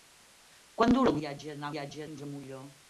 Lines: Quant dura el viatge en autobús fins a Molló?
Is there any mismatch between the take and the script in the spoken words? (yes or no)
yes